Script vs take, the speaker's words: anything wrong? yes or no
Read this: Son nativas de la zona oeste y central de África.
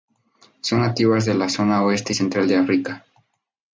no